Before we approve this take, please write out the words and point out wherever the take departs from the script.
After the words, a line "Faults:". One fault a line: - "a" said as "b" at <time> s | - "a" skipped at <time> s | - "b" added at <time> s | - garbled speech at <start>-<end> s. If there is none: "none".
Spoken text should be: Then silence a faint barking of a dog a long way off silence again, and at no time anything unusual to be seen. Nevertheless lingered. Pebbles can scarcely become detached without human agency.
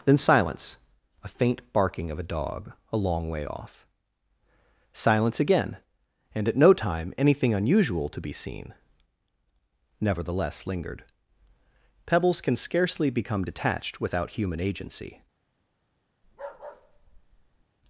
Then silence a faint barking of a dog a long way off silence again, and at no time anything unusual to be seen. Nevertheless lingered. Pebbles can scarcely become detached without human agency.
Faults:
none